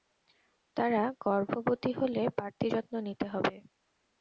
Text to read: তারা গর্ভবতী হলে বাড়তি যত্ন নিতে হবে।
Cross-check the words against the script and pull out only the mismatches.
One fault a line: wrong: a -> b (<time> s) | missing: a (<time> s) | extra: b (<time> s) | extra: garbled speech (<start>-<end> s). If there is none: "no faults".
no faults